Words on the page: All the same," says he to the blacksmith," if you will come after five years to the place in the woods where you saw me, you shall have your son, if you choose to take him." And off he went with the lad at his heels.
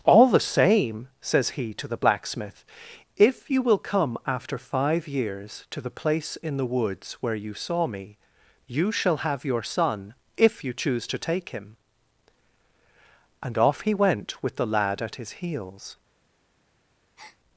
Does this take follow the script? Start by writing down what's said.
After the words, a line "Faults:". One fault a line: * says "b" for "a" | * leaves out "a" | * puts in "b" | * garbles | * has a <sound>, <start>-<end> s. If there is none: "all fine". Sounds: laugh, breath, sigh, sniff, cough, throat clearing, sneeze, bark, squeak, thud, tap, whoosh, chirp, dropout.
All the same," says he to the blacksmith," if you will come after five years to the place in the woods where you saw me, you shall have your son, if you choose to take him." And off he went with the lad at his heels.
Faults:
* has a breath, 17.2-17.4 s